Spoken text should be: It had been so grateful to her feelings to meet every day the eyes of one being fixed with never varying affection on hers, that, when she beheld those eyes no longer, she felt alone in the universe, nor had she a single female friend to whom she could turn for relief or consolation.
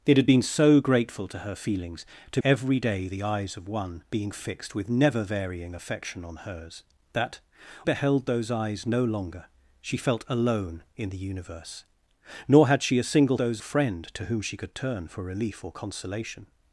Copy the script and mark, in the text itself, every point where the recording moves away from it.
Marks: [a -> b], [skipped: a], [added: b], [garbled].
It had been so grateful to her feelings to [skipped: meet] every day the eyes of one being fixed with never varying affection on hers, that, [skipped: when she] beheld those eyes no longer, she felt alone in the universe, nor had she a single [female -> those] friend to whom she could turn for relief or consolation.